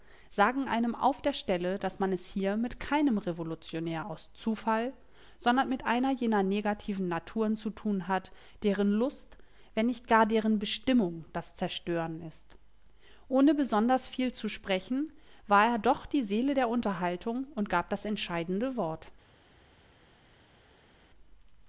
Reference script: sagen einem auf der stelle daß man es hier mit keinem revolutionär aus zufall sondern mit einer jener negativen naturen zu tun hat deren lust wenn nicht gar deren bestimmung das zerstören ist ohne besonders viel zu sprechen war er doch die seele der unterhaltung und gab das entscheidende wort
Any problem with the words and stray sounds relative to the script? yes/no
no